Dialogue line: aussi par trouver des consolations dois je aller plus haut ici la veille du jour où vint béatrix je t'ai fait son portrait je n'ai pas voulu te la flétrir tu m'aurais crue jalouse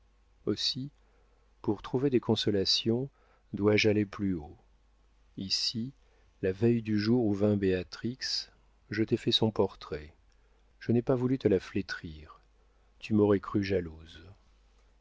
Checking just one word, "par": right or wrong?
wrong